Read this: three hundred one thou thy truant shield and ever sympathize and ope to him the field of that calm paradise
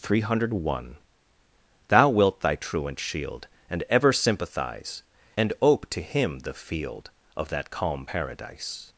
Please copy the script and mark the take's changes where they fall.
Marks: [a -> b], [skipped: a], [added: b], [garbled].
three hundred one thou [added: wilt] thy truant shield and ever sympathize and ope to him the field of that calm paradise